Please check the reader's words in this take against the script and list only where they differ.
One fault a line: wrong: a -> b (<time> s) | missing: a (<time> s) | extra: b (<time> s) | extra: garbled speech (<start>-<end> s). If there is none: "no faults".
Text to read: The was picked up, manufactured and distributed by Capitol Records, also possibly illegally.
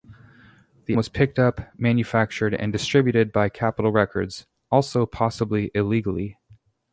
no faults